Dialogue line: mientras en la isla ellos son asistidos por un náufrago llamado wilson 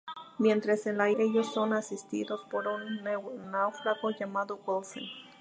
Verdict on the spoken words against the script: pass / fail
fail